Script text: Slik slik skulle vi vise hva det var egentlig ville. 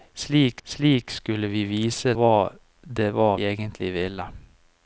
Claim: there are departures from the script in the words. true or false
false